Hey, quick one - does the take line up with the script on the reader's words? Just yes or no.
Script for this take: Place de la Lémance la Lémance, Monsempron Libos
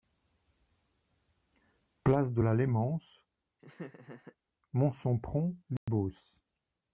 no